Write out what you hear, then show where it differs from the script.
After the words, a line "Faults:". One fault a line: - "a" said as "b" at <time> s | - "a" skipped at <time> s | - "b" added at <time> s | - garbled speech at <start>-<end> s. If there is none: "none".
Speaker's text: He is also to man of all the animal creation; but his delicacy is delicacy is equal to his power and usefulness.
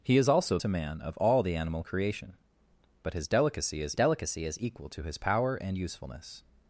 He is also to man of all the animal creation; but his delicacy is delicacy is equal to his power and usefulness.
Faults:
none